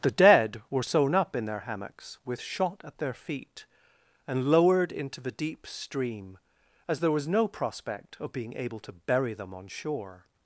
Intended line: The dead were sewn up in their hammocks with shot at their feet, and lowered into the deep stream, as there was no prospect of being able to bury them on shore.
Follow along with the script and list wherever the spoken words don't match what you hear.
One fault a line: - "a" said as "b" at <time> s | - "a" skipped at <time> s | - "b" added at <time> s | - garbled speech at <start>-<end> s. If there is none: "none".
none